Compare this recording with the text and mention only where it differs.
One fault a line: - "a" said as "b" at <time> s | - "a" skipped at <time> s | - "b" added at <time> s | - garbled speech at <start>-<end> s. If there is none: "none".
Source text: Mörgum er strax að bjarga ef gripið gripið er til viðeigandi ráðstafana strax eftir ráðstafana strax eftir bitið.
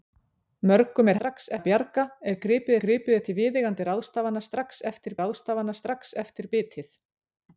none